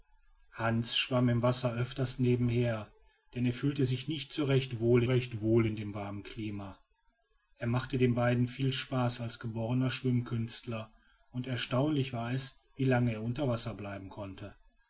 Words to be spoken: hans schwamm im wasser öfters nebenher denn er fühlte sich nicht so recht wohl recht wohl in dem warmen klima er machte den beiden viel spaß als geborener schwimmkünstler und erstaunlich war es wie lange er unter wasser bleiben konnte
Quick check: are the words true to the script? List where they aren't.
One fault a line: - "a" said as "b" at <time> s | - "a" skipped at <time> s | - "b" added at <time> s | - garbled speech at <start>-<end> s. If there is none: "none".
none